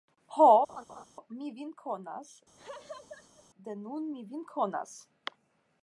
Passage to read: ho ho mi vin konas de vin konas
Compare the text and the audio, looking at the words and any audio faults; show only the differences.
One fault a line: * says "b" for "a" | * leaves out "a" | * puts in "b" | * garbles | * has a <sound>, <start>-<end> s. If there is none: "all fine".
* leaves out "ho"
* has a laugh, 0.7-1.0 s
* has a laugh, 2.6-3.5 s
* puts in "nun mi"